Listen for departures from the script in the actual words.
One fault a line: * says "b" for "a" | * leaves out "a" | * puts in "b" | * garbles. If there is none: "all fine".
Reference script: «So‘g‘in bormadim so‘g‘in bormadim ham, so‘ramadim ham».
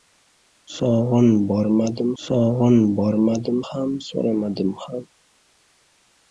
all fine